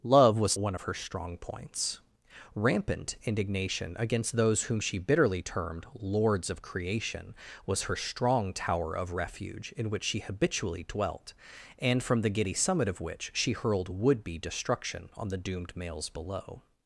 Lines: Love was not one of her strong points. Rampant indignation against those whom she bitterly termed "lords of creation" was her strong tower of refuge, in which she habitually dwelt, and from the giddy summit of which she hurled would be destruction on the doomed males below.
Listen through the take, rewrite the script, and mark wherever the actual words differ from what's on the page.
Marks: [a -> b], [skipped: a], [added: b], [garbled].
Love was [skipped: not] one of her strong points. Rampant indignation against those whom she bitterly termed "lords of creation" was her strong tower of refuge, in which she habitually dwelt, and from the giddy summit of which she hurled would be destruction on the doomed males below.